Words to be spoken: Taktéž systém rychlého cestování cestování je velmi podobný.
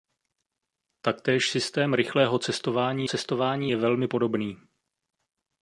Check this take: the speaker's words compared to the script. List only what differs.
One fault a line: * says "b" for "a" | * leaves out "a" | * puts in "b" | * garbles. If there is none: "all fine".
all fine